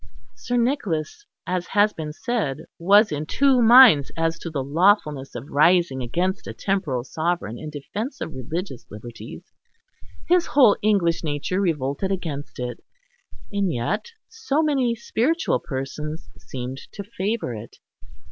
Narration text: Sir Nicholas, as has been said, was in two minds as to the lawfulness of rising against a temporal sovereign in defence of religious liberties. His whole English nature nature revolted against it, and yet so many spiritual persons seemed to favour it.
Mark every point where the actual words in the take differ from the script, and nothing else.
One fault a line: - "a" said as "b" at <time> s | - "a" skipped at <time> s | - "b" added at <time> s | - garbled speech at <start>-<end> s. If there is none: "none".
- "nature" skipped at 11.6 s